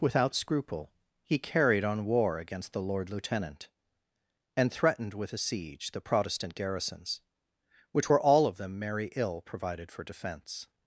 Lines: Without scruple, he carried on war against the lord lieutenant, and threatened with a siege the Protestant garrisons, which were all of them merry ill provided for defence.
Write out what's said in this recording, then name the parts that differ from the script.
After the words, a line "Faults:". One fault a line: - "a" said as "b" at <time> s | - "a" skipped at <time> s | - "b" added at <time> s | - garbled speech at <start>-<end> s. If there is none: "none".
Without scruple, he carried on war against the lord lieutenant, and threatened with a siege the Protestant garrisons, which were all of them merry ill provided for defence.
Faults:
none